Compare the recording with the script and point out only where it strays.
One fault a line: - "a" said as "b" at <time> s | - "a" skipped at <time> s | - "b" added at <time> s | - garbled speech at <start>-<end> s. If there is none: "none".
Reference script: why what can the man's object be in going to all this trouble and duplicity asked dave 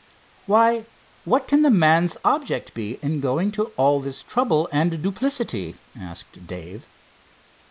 none